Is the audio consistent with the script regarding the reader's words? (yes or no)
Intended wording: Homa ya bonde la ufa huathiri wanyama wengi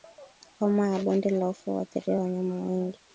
yes